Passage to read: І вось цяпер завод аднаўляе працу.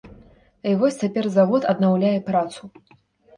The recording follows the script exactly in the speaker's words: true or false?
true